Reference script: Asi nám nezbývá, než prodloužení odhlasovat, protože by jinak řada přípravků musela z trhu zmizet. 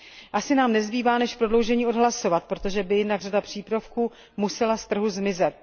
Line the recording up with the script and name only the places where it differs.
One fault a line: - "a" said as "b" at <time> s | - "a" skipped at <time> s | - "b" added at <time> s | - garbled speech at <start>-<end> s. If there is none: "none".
none